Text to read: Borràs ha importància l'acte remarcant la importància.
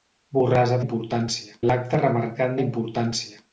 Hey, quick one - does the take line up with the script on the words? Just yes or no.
yes